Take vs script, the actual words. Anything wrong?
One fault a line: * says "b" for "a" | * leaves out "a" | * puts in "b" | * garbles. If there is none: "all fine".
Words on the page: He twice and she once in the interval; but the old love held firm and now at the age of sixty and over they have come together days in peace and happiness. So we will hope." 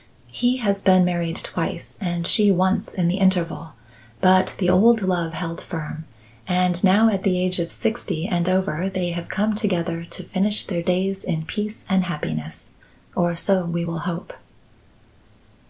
* puts in "has been married"
* puts in "to finish their"
* puts in "Or"